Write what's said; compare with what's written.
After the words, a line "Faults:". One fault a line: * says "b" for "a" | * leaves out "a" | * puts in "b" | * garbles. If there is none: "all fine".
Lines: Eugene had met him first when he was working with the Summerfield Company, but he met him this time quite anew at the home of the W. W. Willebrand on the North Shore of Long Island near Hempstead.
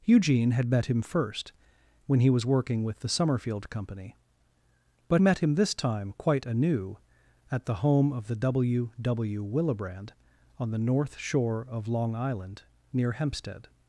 Eugene had met him first when he was working with the Summerfield Company, but met him this time quite anew at the home of the W. W. Willebrand on the North Shore of Long Island near Hempstead.
Faults:
* leaves out "he"